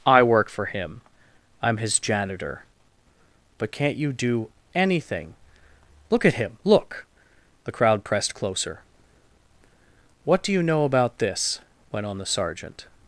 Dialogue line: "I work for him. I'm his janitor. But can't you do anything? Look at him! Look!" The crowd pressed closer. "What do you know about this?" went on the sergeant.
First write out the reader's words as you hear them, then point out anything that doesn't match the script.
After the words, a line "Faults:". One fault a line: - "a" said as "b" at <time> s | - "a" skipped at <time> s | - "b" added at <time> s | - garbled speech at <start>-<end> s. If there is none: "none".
"I work for him. I'm his janitor. But can't you do anything? Look at him! Look!" The crowd pressed closer. "What do you know about this?" went on the sergeant.
Faults:
none